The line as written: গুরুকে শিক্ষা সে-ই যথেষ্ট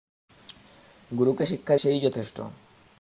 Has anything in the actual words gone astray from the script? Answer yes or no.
no